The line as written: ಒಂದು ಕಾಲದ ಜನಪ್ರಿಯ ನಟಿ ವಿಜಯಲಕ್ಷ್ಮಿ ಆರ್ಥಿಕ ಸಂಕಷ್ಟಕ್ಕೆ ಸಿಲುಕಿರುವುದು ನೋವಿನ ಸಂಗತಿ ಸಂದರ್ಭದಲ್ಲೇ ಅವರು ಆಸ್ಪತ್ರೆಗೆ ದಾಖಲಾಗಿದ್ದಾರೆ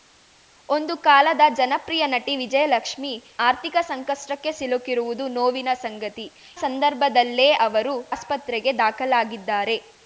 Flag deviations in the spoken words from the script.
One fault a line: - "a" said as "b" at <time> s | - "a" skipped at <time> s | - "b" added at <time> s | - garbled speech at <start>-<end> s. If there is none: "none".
none